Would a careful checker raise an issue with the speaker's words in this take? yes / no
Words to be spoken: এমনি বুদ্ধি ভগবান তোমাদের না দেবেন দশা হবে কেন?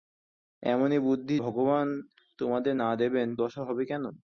no